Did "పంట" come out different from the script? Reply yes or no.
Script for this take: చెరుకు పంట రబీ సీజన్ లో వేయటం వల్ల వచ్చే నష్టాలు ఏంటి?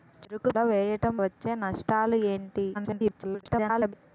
yes